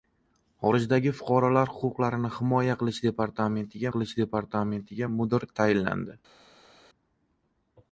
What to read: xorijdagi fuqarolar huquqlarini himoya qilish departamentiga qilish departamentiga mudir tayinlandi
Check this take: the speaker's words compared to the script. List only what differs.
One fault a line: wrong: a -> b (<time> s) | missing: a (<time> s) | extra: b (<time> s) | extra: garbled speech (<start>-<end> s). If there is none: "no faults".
no faults